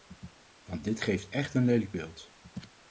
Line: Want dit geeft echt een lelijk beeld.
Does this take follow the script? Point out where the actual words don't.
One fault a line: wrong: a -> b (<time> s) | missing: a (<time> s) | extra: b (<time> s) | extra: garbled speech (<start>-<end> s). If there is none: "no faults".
no faults